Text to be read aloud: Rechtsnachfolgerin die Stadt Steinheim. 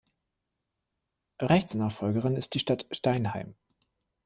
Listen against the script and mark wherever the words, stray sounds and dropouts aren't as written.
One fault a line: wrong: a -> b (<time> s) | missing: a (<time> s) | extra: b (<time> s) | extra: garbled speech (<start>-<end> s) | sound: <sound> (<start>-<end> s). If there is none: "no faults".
extra: ist (2.3 s)